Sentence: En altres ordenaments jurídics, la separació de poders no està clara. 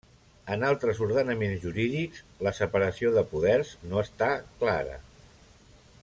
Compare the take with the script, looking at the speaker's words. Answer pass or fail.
pass